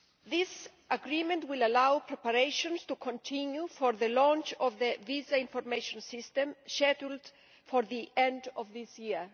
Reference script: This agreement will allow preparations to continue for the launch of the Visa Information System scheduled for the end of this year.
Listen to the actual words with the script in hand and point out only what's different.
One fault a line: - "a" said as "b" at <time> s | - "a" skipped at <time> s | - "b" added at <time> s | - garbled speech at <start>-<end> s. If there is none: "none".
none